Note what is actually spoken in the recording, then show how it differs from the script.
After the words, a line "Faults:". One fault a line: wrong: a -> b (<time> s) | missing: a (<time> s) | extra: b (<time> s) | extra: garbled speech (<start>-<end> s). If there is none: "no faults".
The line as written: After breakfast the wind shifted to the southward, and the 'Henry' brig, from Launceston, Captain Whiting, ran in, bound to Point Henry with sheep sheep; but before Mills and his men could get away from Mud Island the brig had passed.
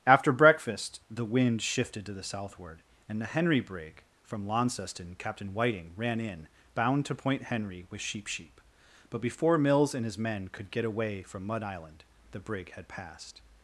After breakfast the wind shifted to the southward, and the 'Henry' brig, from Launceston, Captain Whiting, ran in, bound to Point Henry with sheep sheep; but before Mills and his men could get away from Mud Island the brig had passed.
Faults:
no faults